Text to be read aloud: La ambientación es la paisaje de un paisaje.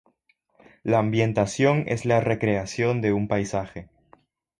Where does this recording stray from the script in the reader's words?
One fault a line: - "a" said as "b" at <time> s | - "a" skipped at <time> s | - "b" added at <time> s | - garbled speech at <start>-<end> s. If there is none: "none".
- "paisaje" said as "recreación" at 2.2 s